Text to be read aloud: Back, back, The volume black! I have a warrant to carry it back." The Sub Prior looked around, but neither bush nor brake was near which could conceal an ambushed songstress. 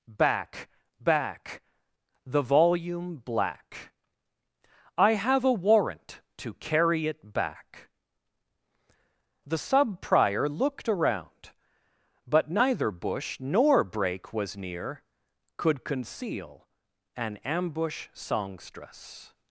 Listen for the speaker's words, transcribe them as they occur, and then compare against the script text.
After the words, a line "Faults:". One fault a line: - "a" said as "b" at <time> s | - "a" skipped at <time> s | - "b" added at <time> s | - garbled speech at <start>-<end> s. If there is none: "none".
Back, back, The volume black! I have a warrant to carry it back." The Sub Prior looked around, but neither bush nor brake was near could conceal an ambush songstress.
Faults:
- "which" skipped at 15.0 s
- "ambushed" said as "ambush" at 17.4 s